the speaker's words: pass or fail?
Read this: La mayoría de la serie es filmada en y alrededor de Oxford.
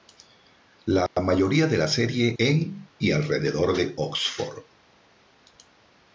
fail